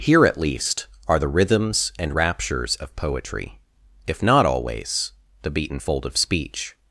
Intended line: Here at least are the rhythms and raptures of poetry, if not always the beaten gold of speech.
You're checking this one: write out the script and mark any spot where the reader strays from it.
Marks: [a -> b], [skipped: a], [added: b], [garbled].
Here at least are the rhythms and raptures of poetry, if not always the beaten [gold -> fold] of speech.